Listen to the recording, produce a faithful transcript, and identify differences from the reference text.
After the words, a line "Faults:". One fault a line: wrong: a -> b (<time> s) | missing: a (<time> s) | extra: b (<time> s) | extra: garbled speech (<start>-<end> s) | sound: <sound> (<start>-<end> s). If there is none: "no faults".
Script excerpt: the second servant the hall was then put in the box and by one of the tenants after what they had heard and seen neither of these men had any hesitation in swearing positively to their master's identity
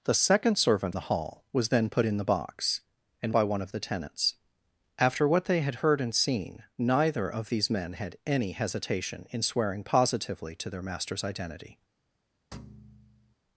the second servant the hall was then put in the box and by one of the tenants after what they had heard and seen neither of these men had any hesitation in swearing positively to their master's identity
Faults:
sound: thud (12.5-13.4 s)